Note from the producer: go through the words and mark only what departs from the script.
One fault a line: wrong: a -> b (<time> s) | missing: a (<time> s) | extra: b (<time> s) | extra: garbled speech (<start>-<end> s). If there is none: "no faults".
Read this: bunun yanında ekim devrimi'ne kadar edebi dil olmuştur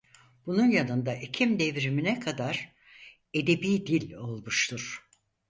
no faults